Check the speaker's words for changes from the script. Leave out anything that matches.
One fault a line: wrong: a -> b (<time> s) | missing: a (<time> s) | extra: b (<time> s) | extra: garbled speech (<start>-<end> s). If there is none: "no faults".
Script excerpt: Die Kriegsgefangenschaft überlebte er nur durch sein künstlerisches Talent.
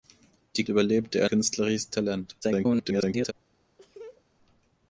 missing: Kriegsgefangenschaft (0.7 s)
missing: nur durch sein (1.3 s)
extra: garbled speech (2.4-3.3 s)